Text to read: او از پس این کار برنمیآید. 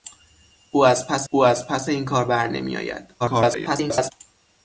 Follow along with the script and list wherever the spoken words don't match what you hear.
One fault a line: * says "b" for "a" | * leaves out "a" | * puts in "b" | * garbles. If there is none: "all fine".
* puts in "او از پس"
* garbles